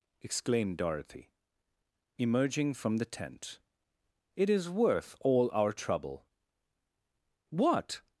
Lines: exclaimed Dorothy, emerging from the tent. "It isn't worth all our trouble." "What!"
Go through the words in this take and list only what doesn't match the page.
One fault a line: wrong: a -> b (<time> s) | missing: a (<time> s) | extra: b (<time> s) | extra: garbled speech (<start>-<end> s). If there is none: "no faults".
wrong: isn't -> is (4.5 s)